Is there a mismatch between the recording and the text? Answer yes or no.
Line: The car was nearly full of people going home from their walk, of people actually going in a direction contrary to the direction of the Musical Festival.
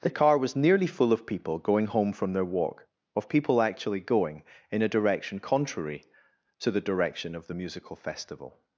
no